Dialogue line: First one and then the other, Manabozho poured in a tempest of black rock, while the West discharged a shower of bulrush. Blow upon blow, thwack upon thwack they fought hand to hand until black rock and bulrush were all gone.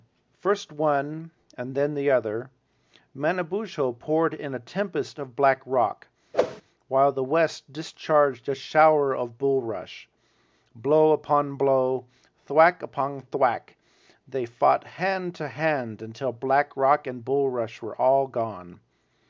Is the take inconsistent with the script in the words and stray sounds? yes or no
yes